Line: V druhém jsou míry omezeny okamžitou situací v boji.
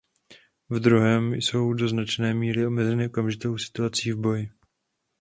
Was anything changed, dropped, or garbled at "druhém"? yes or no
no